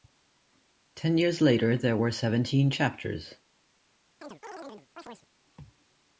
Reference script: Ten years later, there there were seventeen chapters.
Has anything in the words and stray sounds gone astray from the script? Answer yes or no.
yes